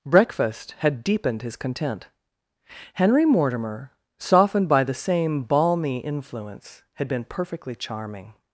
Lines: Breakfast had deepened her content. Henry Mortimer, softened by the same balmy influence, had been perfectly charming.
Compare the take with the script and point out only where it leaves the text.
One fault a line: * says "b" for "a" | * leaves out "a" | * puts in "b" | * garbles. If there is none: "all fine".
* says "his" for "her"